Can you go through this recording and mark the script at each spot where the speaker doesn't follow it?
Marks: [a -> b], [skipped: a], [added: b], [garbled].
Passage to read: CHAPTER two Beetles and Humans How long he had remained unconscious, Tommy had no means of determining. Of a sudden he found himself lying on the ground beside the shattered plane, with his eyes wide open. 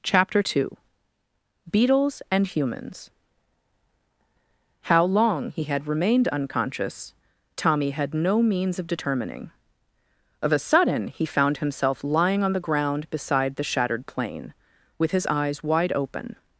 CHAPTER two Beetles and Humans How long he had remained unconscious, Tommy had no means of determining. Of a sudden he found himself lying on the ground beside the shattered plane, with his eyes wide open.